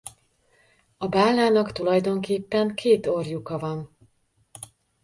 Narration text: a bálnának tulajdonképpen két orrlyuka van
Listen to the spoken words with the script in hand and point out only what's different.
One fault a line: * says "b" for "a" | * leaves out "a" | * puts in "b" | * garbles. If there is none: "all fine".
all fine